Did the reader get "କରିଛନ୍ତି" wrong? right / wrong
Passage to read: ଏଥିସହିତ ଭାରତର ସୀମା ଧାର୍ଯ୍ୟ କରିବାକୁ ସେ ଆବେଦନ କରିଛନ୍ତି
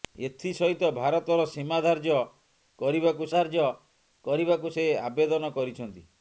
right